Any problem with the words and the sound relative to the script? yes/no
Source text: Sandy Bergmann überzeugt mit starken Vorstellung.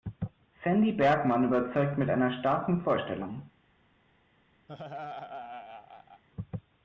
yes